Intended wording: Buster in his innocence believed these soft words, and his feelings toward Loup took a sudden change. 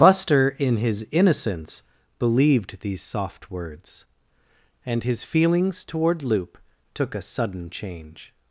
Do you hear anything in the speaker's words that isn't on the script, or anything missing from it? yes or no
no